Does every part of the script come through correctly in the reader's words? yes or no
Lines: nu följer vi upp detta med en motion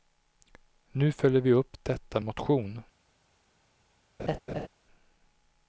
no